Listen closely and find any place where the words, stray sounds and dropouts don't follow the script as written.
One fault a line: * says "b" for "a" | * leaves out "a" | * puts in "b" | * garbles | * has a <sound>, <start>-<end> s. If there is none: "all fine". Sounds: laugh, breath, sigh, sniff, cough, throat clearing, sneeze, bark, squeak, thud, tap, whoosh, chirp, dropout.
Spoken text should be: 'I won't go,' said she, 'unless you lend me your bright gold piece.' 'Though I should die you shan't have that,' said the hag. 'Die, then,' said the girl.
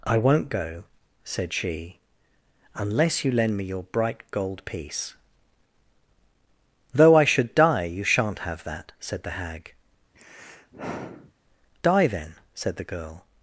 * has a sigh, 10.1-11.3 s